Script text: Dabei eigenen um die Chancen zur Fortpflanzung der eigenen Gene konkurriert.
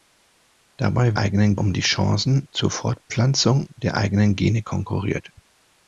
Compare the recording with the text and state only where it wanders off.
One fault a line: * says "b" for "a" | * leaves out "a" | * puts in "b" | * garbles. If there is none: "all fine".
all fine